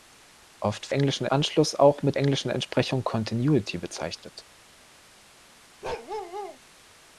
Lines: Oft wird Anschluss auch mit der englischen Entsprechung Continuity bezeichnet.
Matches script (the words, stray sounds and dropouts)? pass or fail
fail